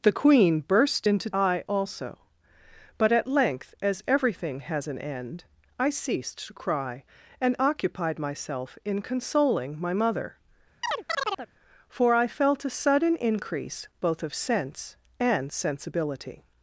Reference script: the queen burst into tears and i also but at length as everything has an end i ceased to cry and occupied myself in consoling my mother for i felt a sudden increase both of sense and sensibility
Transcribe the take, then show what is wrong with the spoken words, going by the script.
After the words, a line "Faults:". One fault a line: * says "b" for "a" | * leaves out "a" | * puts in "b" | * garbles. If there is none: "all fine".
the queen burst into i also but at length as everything has an end i ceased to cry and occupied myself in consoling my mother for i felt a sudden increase both of sense and sensibility
Faults:
* leaves out "tears and"